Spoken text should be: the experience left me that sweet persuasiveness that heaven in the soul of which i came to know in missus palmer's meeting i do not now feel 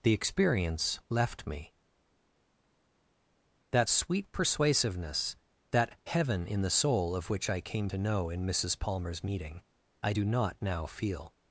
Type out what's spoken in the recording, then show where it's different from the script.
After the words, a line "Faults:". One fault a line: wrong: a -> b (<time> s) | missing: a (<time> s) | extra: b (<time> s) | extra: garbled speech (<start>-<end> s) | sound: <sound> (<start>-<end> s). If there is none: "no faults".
the experience left me that sweet persuasiveness that heaven in the soul of which i came to know in missus palmer's meeting i do not now feel
Faults:
no faults